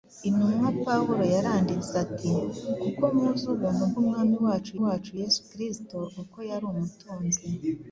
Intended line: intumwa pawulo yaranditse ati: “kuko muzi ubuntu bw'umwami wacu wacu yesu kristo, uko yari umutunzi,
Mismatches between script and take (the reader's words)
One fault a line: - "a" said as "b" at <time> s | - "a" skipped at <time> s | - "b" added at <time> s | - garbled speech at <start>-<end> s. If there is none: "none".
none